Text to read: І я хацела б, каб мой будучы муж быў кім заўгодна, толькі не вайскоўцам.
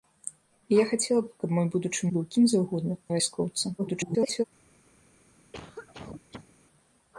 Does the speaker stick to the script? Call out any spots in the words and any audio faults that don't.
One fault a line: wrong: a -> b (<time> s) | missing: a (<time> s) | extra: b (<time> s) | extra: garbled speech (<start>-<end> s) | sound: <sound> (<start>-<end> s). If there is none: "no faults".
missing: муж (2.1 s)
missing: толькі (2.9 s)
extra: garbled speech (3.8-4.4 s)
sound: cough (5.5-6.5 s)